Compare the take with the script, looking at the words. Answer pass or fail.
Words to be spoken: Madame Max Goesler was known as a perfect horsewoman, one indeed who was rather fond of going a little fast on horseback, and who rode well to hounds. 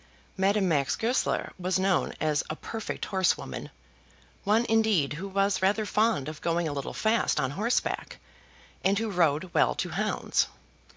pass